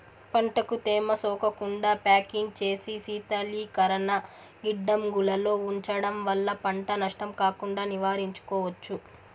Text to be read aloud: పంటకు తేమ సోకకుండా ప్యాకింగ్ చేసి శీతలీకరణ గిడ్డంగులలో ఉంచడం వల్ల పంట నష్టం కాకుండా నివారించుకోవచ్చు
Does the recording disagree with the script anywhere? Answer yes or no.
no